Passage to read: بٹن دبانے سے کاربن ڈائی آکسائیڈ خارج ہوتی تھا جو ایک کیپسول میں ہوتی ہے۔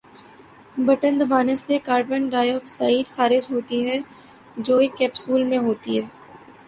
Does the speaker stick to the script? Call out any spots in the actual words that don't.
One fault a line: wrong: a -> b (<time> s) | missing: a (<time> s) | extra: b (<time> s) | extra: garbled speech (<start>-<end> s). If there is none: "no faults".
wrong: تھا -> ہے (3.9 s)